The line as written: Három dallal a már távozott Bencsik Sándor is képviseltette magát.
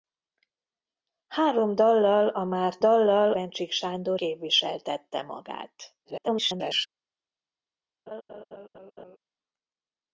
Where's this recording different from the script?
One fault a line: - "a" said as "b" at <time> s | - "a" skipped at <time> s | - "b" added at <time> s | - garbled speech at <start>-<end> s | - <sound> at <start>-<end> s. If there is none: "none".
- "távozott" said as "dallal" at 2.8 s
- "is" skipped at 4.2 s
- garbled speech at 6.0-6.9 s
- laugh at 8.1-9.2 s